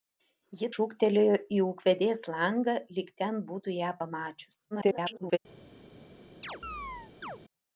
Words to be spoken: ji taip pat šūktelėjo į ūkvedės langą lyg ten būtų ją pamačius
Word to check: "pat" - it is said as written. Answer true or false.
false